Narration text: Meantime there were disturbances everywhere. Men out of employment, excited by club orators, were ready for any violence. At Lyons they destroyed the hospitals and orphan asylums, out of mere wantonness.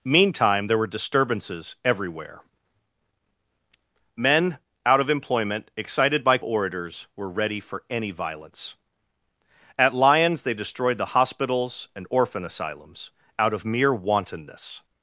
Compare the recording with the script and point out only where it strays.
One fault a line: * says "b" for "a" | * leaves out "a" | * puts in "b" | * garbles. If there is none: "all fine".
* leaves out "club"